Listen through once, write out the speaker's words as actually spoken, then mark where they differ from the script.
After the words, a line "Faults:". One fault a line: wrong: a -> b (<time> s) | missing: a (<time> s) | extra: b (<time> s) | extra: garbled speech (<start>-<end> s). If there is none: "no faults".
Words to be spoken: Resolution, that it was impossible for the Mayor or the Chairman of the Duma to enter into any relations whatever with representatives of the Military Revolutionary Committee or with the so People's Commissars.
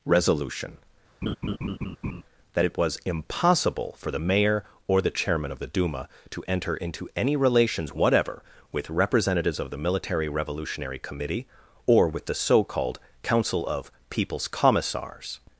Resolution, that it was impossible for the Mayor or the Chairman of the Duma to enter into any relations whatever with representatives of the Military Revolutionary Committee or with the so called Council of People's Commissars.
Faults:
extra: called Council of (12.7 s)